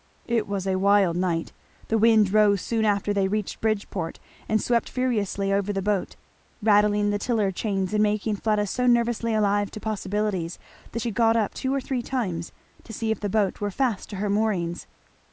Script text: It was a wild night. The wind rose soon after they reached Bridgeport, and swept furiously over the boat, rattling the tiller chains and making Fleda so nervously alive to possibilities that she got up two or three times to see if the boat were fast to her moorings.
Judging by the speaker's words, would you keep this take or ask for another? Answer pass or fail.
pass